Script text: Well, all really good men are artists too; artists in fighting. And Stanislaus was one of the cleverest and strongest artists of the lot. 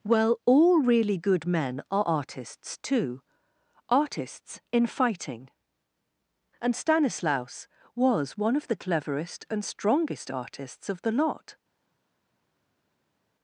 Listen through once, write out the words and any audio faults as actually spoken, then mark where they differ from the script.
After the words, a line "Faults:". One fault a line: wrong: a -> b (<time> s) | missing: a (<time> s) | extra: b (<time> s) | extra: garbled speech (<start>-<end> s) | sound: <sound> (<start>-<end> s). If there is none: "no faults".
Well, all really good men are artists too; artists in fighting. And Stanislaus was one of the cleverest and strongest artists of the lot.
Faults:
no faults